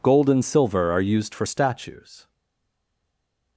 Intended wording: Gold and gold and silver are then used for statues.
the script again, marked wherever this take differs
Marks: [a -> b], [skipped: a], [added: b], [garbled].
Gold and [skipped: gold and] silver are [skipped: then] used for statues.